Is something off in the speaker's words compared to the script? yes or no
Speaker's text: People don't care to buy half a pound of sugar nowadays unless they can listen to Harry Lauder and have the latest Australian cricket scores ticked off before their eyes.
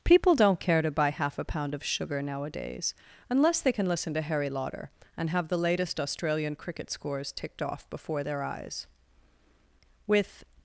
yes